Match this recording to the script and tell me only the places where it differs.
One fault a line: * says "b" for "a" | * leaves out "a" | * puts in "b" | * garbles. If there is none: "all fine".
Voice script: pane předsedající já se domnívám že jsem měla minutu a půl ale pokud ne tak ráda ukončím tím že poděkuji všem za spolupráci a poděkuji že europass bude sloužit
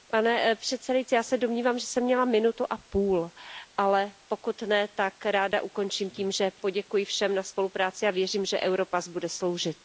* says "věřím" for "poděkuji"